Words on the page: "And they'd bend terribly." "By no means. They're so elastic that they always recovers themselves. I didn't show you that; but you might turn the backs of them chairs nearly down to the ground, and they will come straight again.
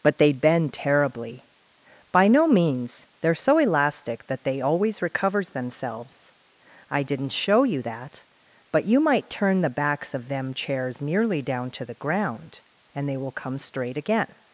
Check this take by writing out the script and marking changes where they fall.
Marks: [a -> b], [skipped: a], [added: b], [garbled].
["And -> But] they'd bend terribly." "By no means. They're so elastic that they always recovers themselves. I didn't show you that; but you might turn the backs of them chairs nearly down to the ground, and they will come straight again.